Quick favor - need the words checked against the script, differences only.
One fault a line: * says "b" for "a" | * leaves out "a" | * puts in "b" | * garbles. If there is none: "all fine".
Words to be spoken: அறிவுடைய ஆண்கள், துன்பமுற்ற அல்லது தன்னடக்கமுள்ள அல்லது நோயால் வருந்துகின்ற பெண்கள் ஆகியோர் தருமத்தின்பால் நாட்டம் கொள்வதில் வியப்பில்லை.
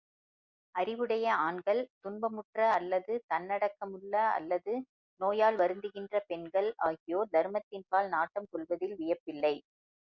all fine